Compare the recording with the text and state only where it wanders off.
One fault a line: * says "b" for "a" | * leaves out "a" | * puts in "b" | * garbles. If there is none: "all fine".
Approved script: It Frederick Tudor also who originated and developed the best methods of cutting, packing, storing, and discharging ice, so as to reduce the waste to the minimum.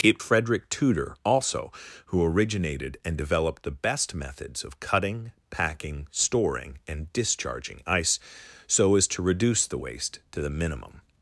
all fine